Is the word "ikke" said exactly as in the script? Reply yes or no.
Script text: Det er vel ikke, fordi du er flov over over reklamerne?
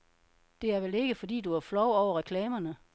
yes